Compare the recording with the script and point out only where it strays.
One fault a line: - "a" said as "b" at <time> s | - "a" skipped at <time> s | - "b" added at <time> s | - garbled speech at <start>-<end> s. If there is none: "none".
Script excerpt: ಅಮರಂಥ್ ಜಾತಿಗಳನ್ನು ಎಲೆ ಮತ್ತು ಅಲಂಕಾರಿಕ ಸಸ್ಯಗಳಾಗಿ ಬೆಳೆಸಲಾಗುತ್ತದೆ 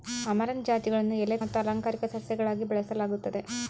none